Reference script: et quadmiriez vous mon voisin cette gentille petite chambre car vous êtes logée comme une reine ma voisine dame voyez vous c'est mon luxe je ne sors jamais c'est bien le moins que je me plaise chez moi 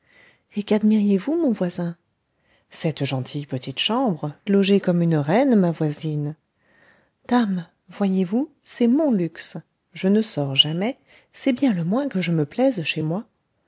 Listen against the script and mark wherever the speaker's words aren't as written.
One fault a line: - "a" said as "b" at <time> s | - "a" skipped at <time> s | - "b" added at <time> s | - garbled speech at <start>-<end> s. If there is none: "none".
- "car vous êtes" skipped at 4.3 s